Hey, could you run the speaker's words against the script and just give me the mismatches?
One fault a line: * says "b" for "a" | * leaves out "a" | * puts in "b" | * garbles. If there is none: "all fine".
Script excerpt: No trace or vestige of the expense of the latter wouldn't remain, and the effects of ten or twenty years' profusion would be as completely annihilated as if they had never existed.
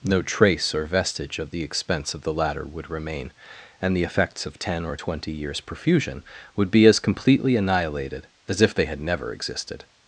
* says "would" for "wouldn't"